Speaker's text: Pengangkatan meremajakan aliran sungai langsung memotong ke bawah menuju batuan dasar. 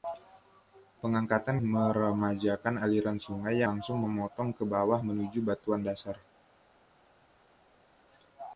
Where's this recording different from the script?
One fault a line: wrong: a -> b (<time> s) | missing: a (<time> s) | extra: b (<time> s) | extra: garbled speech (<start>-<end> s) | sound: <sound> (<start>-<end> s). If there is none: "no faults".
no faults